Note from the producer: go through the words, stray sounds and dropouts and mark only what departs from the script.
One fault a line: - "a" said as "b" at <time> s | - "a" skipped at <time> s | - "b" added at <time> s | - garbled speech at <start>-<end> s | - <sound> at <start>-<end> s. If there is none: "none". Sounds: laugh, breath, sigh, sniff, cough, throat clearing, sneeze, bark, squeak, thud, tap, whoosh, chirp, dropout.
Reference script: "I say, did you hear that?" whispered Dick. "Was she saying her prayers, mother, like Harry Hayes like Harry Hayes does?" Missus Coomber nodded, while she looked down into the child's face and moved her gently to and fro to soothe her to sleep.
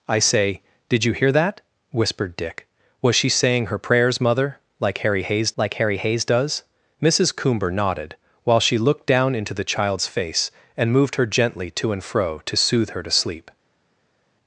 none